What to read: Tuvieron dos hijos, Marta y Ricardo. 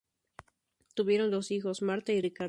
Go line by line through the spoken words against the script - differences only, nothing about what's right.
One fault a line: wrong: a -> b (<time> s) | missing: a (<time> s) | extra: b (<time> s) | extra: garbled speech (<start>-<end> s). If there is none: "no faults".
no faults